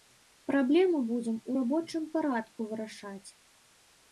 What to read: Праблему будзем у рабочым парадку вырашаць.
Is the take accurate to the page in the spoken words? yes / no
yes